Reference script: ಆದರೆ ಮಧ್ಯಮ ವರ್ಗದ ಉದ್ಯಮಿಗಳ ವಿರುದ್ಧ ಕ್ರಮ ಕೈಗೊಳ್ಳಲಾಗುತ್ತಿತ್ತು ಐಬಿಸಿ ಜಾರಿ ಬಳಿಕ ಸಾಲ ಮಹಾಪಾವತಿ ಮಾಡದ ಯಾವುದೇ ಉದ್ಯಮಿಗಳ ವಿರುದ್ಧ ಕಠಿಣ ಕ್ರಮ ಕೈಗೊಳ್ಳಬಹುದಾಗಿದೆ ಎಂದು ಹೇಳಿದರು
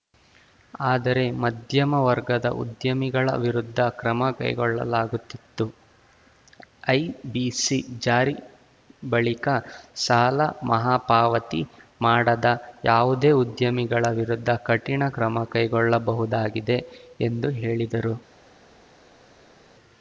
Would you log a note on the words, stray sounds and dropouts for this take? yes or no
no